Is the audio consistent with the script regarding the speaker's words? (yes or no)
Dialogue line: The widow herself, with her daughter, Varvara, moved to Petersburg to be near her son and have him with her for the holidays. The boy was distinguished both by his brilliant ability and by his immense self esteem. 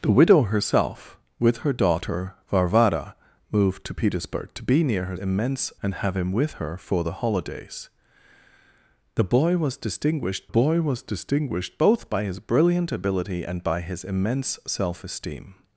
no